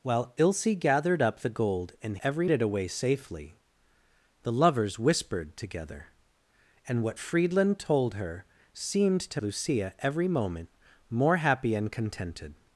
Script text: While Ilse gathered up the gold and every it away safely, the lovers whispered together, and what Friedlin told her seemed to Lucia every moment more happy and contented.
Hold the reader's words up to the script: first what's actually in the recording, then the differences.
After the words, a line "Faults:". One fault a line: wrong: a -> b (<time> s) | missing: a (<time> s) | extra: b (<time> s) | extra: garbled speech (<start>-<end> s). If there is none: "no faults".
While Ilse gathered up the gold and every it away safely, the lovers whispered together, and what Friedlin told her seemed to Lucia every moment more happy and contented.
Faults:
no faults